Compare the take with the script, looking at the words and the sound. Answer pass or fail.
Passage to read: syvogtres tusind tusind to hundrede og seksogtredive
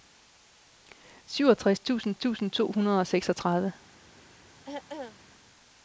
fail